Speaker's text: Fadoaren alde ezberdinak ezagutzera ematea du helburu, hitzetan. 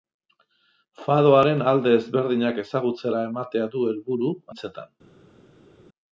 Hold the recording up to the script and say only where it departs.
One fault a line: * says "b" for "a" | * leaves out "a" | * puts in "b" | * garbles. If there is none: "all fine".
all fine